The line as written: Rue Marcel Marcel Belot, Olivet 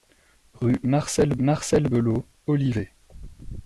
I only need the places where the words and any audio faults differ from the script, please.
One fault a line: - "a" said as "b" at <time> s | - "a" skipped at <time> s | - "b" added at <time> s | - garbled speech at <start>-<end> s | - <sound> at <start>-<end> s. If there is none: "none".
none